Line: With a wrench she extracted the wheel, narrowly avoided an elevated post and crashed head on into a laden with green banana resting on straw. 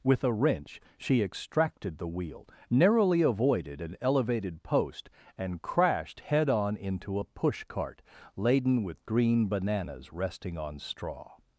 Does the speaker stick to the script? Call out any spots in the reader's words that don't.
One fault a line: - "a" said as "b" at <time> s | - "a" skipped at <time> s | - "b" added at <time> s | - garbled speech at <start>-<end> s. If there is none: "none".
- "push cart" added at 7.3 s
- "banana" said as "bananas" at 9.5 s